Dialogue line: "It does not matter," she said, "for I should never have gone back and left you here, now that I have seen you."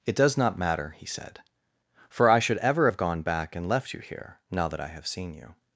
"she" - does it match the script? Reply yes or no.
no